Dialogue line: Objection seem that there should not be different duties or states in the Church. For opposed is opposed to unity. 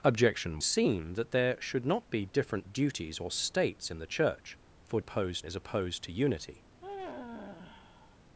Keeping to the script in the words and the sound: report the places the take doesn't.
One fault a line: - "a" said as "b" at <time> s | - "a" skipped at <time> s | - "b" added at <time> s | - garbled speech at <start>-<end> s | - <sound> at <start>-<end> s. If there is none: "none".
- sigh at 6.8-8.2 s